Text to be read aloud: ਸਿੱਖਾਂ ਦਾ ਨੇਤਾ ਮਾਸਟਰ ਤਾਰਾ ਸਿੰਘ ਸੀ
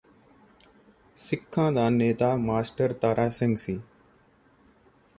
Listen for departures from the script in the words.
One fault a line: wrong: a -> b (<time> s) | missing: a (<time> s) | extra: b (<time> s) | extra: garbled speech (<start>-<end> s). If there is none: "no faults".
no faults